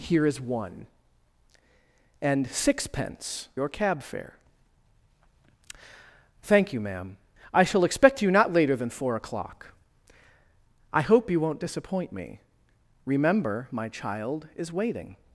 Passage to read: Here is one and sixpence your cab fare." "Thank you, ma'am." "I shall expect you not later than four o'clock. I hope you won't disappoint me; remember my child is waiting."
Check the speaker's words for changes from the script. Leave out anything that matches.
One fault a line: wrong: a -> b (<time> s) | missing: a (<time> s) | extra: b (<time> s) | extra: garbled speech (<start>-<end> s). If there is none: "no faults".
no faults